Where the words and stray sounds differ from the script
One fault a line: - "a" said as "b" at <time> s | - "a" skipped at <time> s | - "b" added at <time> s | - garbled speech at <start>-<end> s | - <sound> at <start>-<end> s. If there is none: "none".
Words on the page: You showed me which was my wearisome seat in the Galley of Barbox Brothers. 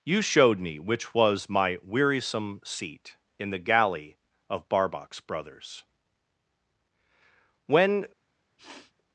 - "When" added at 7.7 s
- sniff at 8.6-8.9 s